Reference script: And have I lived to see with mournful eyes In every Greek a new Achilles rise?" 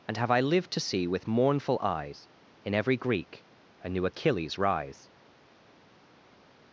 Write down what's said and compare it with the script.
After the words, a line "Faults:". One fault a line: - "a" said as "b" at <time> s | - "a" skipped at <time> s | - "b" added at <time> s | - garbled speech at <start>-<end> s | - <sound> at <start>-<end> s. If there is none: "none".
And have I lived to see with mournful eyes In every Greek a new Achilles rise?"
Faults:
none